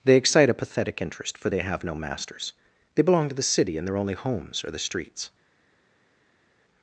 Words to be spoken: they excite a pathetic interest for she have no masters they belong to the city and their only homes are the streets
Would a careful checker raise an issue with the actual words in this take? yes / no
yes